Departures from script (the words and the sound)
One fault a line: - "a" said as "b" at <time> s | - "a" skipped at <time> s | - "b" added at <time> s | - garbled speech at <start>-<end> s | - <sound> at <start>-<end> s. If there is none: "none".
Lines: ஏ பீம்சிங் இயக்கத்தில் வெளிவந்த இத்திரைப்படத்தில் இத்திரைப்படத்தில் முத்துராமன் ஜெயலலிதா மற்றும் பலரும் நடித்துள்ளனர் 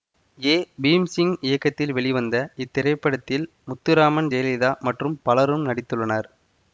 - "இத்திரைப்படத்தில்" skipped at 3.5 s